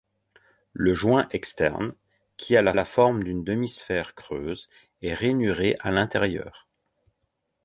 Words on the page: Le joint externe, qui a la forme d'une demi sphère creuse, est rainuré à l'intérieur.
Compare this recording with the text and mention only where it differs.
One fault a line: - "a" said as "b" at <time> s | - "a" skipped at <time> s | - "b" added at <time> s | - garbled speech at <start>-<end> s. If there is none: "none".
- "la" added at 2.7 s